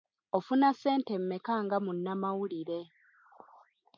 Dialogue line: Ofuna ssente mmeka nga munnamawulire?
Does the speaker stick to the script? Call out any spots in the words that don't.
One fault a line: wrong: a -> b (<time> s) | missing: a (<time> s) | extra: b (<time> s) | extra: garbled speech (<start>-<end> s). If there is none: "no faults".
no faults